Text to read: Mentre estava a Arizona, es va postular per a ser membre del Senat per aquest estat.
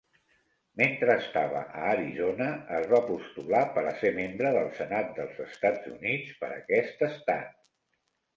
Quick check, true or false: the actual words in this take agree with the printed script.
false